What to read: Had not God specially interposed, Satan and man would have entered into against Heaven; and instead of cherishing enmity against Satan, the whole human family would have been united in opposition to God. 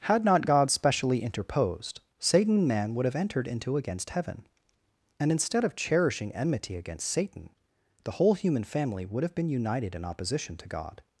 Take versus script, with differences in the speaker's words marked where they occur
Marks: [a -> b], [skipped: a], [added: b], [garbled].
Had not God specially interposed, Satan and man would have entered into against Heaven; and instead of cherishing enmity against Satan, the whole human family would have been united in opposition to God.